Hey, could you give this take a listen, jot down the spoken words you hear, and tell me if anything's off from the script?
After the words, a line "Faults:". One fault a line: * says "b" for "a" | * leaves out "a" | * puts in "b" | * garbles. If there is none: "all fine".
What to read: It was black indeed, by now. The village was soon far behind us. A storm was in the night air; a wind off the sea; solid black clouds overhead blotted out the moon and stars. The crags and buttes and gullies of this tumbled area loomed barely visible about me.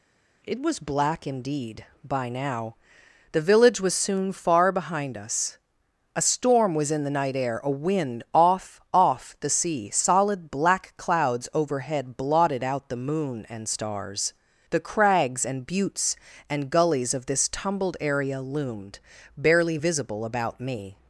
It was black indeed, by now. The village was soon far behind us. A storm was in the night air; a wind off off the sea; solid black clouds overhead blotted out the moon and stars. The crags and buttes and gullies of this tumbled area loomed barely visible about me.
Faults:
* puts in "off"